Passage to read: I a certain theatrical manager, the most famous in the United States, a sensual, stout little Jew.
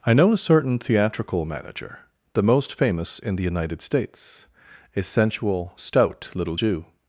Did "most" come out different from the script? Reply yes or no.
no